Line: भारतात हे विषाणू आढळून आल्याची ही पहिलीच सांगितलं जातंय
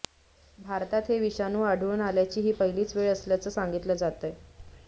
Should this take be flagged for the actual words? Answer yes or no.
yes